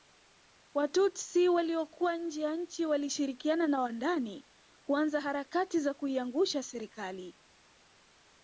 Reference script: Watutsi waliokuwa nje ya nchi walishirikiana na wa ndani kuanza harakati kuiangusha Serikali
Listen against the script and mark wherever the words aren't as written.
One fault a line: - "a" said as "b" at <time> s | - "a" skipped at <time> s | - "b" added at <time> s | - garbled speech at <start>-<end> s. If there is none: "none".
- "za" added at 5.8 s